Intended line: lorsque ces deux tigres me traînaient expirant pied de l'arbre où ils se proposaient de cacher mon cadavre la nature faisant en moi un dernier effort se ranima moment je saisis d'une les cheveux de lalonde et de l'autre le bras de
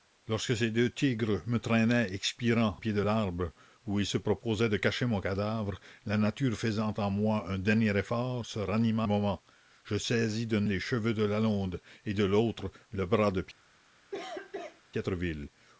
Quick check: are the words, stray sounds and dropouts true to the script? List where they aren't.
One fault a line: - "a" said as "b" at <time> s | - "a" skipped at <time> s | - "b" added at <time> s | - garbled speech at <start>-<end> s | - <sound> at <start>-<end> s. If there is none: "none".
- cough at 14.1-14.8 s